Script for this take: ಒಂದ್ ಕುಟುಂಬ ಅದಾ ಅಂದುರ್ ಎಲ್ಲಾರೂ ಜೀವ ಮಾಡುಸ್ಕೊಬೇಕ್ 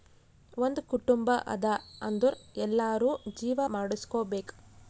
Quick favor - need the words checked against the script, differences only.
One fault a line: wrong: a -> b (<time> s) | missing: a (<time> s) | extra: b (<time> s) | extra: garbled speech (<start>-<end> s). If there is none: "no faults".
no faults